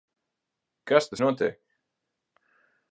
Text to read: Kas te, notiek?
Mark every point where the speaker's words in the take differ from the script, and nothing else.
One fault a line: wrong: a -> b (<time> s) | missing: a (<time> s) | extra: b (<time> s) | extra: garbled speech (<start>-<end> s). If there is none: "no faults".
no faults